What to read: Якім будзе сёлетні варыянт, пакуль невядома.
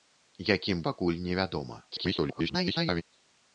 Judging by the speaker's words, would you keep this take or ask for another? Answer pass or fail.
fail